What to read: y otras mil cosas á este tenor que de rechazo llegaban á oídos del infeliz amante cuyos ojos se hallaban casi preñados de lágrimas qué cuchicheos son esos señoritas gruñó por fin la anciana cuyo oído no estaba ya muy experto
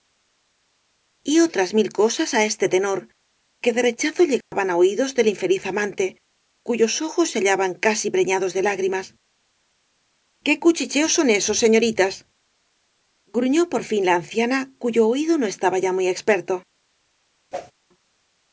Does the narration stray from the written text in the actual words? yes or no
no